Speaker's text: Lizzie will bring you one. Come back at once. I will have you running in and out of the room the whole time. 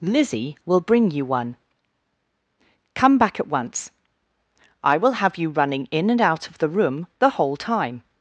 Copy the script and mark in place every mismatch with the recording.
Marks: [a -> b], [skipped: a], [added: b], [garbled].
Lizzie will bring you one. Come back at once. I will have you running in and out of the room the whole time.